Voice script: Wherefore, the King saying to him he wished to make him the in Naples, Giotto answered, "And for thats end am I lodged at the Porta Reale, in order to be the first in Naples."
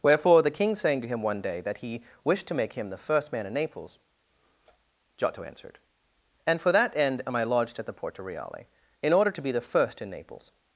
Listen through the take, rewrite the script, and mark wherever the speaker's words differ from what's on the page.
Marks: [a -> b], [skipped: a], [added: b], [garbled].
Wherefore, the King saying to him [added: one day that] he wished to make him the [added: first man] in Naples, Giotto answered, "And for [thats -> that] end am I lodged at the Porta Reale, in order to be the first in Naples."